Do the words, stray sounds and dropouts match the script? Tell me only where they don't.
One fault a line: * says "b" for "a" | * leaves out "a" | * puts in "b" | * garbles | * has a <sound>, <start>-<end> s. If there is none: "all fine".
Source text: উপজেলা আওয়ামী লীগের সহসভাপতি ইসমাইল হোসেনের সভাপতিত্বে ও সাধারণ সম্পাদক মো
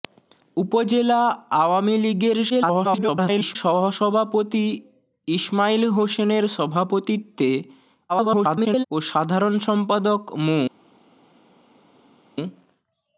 * garbles
* garbles